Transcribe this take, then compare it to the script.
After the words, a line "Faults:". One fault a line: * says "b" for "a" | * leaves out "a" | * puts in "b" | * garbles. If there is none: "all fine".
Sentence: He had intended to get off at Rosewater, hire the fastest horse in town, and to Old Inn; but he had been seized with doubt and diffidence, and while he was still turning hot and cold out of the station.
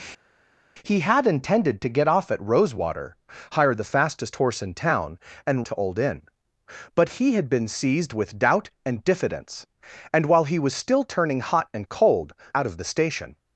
He had intended to get off at Rosewater, hire the fastest horse in town, and to Old Inn; but he had been seized with doubt and diffidence, and while he was still turning hot and cold out of the station.
Faults:
all fine